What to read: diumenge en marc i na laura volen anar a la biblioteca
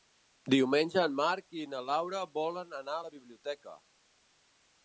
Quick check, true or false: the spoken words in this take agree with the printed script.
true